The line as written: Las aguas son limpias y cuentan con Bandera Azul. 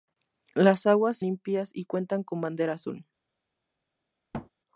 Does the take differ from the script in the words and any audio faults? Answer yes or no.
yes